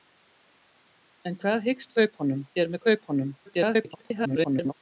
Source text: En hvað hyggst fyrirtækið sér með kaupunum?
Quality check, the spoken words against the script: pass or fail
fail